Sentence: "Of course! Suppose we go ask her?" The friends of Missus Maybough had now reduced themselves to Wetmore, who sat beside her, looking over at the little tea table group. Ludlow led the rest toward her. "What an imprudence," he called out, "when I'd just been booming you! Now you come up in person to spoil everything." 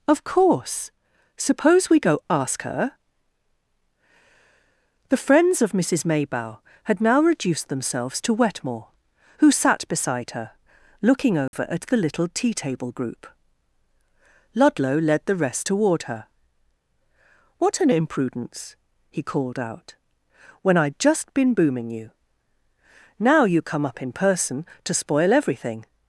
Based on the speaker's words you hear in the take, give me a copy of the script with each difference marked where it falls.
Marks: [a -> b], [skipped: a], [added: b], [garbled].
"Of course! Suppose we go ask her?" The friends of Missus Maybough had now reduced themselves to Wetmore, who sat beside her, looking over at the little tea table group. Ludlow led the rest toward her. "What an imprudence," he called out, "when I'd just been booming you! Now you come up in person to spoil everything."